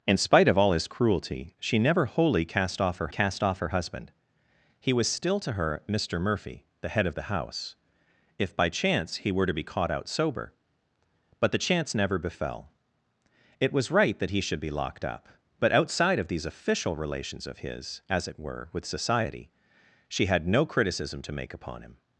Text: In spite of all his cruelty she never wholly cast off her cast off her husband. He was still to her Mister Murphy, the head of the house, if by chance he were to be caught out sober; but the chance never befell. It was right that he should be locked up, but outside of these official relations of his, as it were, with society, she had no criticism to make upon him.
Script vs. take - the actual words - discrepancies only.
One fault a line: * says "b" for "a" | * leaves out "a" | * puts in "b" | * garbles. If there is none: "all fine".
all fine